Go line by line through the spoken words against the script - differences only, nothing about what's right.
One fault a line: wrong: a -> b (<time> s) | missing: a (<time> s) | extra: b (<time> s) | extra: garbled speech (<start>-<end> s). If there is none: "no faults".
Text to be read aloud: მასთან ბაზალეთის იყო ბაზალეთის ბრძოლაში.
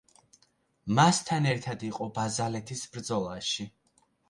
wrong: ბაზალეთის -> ერთად (1.5 s)